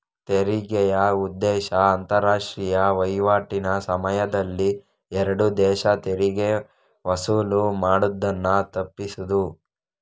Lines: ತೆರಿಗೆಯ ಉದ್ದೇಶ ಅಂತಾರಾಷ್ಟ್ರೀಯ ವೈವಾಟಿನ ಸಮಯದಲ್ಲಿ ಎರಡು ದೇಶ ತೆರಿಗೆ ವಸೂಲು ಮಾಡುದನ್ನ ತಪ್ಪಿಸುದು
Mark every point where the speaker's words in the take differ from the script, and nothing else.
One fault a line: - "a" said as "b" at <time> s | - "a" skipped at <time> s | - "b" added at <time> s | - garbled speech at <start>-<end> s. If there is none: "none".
none